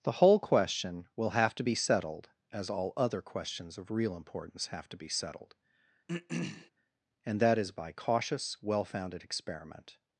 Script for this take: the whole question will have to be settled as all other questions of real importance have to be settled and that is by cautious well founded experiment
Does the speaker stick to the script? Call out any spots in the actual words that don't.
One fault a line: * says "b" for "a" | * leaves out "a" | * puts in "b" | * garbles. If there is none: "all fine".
all fine